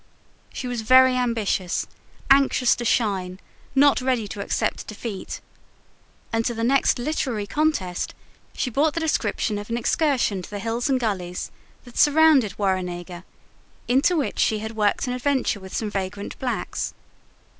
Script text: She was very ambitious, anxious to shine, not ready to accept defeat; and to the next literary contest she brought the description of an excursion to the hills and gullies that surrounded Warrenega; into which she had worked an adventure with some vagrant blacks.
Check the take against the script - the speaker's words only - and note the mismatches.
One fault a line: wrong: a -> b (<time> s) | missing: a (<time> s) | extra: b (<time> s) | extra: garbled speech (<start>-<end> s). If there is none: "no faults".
no faults